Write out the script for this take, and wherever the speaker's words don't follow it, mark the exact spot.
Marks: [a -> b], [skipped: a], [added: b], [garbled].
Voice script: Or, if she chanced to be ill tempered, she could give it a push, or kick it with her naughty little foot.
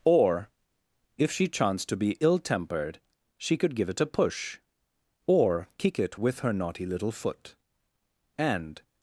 Or, if she chanced to be ill tempered, she could give it a push, or kick it with her naughty little foot. [added: And]